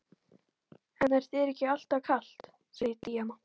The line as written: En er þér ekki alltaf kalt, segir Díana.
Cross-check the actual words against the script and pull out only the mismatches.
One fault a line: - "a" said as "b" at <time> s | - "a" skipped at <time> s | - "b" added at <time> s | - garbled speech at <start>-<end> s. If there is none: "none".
none